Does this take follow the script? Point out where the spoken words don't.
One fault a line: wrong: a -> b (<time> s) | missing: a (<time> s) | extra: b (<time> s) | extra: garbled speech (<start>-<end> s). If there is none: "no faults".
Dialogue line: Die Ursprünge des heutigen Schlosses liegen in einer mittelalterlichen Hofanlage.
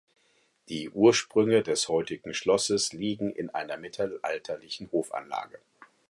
no faults